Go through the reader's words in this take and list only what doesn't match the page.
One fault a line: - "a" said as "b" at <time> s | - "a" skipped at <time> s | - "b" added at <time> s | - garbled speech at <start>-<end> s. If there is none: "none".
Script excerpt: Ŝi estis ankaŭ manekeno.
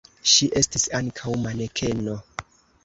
none